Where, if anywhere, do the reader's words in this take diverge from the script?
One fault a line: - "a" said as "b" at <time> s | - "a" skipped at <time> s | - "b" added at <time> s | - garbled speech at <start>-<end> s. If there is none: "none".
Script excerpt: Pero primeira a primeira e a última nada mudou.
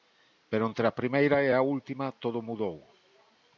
- "primeira" said as "entre" at 0.7 s
- "nada" said as "todo" at 2.2 s